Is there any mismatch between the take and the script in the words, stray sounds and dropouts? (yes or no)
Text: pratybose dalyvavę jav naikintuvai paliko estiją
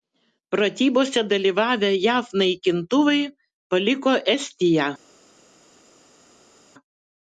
no